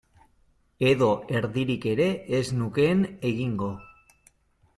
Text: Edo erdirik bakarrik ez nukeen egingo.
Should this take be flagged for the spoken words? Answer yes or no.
yes